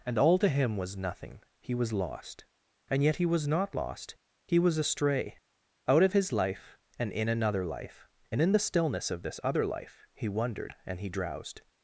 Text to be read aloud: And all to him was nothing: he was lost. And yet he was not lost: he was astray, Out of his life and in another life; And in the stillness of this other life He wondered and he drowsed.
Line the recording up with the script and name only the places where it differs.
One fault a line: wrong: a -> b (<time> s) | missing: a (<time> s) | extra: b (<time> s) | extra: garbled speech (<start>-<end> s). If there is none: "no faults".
no faults